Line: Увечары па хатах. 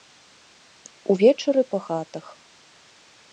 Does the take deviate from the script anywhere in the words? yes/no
no